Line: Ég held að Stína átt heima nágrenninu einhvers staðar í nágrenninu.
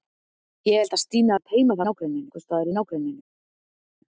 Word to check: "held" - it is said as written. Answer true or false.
true